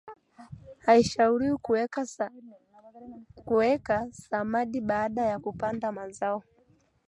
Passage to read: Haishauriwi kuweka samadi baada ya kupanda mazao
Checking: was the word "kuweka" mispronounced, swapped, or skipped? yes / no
no